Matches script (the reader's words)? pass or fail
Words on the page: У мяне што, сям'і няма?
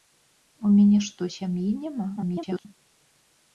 fail